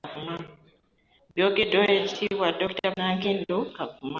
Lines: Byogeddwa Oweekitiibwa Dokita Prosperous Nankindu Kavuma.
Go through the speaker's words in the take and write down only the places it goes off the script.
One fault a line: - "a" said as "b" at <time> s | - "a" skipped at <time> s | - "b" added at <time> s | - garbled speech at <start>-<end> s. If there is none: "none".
- "Prosperous" skipped at 2.9 s